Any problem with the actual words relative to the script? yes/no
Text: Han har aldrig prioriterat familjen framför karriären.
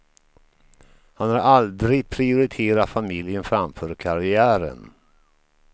no